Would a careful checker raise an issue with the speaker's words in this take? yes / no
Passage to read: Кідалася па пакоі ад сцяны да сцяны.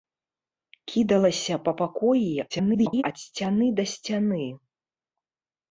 yes